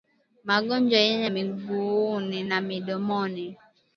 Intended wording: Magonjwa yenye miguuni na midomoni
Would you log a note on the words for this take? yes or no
no